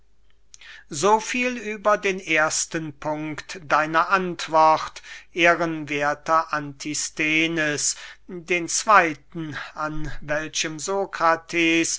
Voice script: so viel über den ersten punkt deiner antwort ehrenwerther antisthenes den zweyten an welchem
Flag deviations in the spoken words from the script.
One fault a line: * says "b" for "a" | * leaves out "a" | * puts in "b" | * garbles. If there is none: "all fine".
all fine